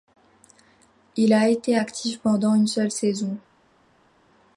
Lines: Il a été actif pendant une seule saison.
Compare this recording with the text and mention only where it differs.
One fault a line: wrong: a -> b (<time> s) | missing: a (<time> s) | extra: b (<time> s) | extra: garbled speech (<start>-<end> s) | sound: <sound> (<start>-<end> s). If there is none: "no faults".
no faults